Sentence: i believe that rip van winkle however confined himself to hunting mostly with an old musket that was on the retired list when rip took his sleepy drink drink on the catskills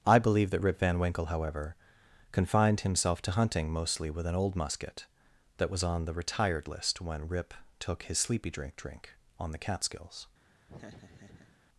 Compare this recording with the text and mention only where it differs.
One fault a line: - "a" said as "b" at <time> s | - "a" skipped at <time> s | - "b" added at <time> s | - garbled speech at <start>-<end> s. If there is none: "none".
none